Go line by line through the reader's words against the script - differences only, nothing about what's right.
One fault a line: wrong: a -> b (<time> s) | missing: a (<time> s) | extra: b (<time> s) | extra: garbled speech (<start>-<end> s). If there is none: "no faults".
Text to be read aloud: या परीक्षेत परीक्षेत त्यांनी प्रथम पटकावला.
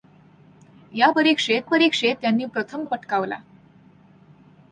no faults